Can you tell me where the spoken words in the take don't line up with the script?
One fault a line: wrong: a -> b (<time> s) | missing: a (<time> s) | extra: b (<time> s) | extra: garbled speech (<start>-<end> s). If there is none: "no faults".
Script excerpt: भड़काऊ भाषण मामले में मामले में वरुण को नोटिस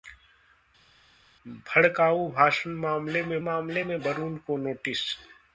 no faults